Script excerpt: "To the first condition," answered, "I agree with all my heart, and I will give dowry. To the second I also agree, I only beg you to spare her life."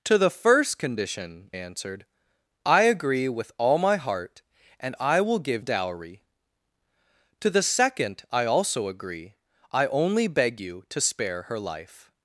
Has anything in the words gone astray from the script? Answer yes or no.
no